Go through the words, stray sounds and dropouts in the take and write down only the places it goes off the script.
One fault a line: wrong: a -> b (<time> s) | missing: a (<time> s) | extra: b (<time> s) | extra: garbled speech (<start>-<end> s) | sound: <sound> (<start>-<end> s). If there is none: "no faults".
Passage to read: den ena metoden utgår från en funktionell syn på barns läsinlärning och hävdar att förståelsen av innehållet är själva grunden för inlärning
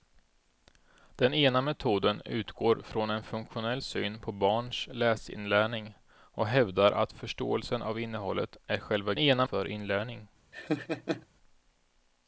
wrong: grunden -> ena (9.2 s)
sound: laugh (10.5-11.3 s)